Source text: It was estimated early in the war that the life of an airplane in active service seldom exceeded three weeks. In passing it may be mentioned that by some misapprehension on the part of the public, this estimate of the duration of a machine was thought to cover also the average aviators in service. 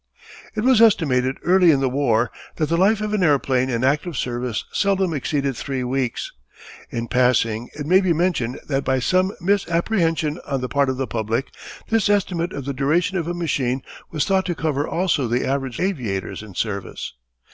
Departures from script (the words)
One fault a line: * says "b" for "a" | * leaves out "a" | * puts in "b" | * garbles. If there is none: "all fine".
all fine